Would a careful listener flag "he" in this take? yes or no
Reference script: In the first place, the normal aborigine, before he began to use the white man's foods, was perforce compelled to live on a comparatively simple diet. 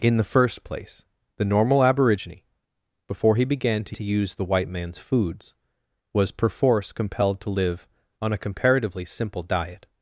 no